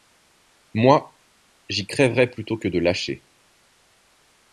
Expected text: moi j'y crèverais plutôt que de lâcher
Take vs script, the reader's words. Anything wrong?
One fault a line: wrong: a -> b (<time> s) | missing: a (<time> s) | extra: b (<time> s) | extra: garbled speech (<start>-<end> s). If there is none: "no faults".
no faults